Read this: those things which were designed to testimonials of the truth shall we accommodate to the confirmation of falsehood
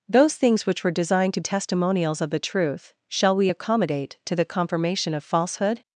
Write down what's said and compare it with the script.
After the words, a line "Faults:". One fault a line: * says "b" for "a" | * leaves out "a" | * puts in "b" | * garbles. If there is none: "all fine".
those things which were designed to testimonials of the truth shall we accommodate to the confirmation of falsehood
Faults:
all fine